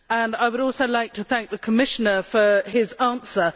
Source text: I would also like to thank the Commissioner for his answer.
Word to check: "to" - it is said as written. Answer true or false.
true